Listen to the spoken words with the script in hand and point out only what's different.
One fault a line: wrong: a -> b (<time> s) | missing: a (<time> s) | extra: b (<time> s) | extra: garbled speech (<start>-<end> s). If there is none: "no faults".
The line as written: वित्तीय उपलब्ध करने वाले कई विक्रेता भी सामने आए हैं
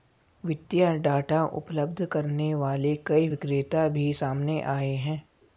extra: डाटा (1.0 s)